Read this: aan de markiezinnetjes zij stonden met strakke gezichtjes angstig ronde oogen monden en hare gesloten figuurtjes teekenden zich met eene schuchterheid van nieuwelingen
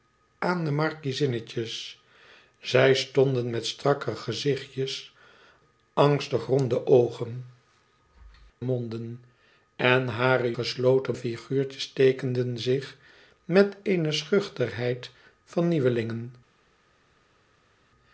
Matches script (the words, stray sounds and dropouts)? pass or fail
pass